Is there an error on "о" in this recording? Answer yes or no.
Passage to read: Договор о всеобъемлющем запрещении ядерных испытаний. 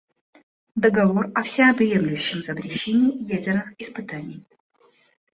no